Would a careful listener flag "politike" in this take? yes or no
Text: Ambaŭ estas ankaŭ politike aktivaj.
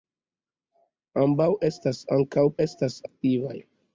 yes